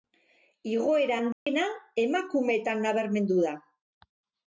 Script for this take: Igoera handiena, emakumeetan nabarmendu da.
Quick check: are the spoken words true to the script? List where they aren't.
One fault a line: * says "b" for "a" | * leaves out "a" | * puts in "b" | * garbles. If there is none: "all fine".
all fine